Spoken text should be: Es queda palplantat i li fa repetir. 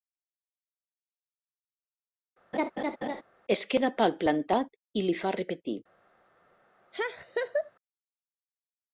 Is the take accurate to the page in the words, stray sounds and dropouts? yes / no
no